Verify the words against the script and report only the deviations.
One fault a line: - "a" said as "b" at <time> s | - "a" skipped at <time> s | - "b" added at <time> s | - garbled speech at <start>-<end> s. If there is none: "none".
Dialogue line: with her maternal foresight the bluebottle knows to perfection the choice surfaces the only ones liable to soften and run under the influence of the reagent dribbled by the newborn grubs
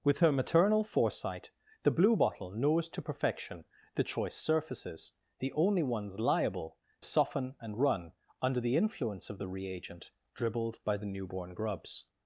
- "to" skipped at 6.8 s